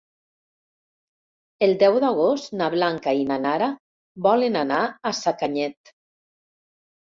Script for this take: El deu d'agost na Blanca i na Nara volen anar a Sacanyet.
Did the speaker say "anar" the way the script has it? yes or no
yes